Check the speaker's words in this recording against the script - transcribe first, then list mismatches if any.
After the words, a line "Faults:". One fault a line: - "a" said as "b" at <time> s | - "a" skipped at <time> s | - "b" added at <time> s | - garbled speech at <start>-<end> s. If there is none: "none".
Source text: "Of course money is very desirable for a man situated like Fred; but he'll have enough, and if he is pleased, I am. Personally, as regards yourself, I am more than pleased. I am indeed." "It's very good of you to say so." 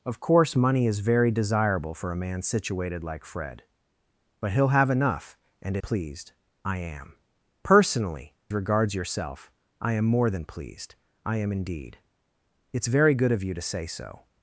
"Of course money is very desirable for a man situated like Fred; but he'll have enough, and pleased, I am. Personally, regards yourself, I am more than pleased. I am indeed." "It's very good of you to say so."
Faults:
- "if he is" skipped at 5.8 s
- "as" skipped at 8.3 s